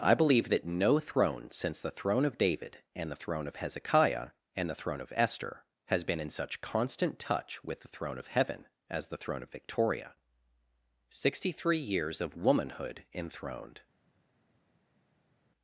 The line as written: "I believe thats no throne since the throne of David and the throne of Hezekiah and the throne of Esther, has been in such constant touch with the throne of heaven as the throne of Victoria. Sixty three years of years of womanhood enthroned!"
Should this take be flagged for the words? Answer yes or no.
yes